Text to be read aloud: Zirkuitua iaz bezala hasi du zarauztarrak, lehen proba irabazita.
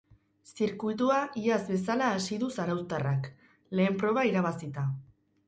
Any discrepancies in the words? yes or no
no